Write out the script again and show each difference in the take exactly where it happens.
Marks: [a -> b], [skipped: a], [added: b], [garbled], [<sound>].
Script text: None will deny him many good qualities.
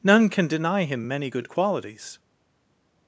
None [will -> can] deny him many good qualities.